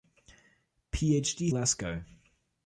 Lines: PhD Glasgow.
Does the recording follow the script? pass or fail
pass